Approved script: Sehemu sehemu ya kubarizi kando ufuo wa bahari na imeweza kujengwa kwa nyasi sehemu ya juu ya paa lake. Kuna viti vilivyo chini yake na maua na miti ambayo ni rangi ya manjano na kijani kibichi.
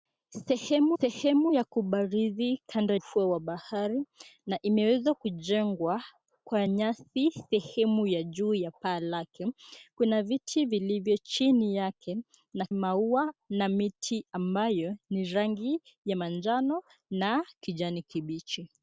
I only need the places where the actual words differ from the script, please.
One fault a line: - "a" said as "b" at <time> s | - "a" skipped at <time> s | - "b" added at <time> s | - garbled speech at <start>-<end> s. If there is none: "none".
none